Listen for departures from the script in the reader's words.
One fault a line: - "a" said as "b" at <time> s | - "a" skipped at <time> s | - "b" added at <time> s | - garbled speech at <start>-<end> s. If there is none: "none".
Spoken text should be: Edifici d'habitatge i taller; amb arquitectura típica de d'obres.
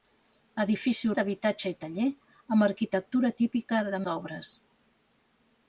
none